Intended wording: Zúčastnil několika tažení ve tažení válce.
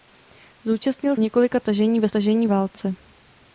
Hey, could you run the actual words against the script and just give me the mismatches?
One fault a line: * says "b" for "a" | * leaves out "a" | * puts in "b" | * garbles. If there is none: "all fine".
all fine